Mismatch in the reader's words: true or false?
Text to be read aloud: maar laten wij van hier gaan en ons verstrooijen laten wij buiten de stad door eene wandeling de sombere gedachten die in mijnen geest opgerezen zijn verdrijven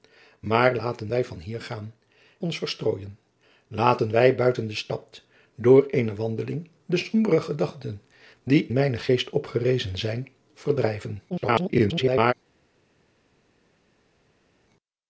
true